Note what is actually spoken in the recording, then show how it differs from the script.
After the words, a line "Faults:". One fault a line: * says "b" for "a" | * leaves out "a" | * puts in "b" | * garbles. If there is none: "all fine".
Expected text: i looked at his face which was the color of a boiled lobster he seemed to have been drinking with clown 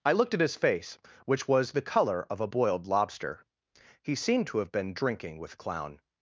i looked at his face which was the color of a boiled lobster he seemed to have been drinking with clown
Faults:
all fine